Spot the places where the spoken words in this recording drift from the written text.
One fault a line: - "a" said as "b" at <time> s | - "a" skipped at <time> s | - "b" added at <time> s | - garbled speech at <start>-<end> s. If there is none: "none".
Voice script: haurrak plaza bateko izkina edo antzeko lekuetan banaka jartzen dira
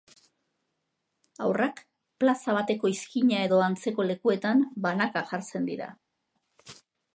none